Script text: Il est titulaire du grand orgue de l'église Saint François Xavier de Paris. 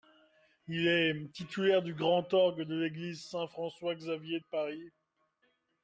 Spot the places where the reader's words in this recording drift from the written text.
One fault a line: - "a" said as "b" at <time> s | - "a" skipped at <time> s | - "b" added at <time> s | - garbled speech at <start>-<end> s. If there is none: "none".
- "de" skipped at 4.4 s